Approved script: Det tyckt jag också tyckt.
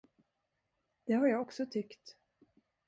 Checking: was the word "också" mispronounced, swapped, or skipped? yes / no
no